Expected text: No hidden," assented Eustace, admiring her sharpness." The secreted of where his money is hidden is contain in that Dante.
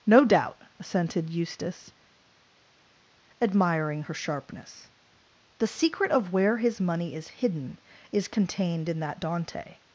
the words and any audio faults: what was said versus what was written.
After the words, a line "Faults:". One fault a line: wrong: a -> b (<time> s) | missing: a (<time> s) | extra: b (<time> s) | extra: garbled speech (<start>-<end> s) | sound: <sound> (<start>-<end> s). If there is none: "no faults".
No doubt," assented Eustace, admiring her sharpness." The secret of where his money is hidden is contained in that Dante.
Faults:
wrong: hidden -> doubt (0.2 s)
wrong: secreted -> secret (5.7 s)
wrong: contain -> contained (8.3 s)